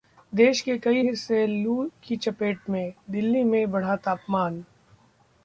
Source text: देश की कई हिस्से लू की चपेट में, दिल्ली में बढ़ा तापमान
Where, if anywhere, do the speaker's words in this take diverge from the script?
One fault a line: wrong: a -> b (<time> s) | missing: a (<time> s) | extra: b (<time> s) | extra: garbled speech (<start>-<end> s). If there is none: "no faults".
wrong: की -> के (0.6 s)